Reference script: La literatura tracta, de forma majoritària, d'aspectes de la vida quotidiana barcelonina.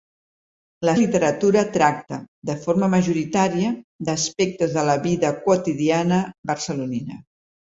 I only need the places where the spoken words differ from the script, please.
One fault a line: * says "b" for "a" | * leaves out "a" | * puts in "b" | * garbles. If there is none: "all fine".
all fine